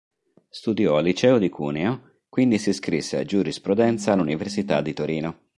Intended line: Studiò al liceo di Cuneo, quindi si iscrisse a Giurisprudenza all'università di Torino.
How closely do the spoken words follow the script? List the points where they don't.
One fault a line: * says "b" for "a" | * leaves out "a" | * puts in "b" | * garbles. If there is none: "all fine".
all fine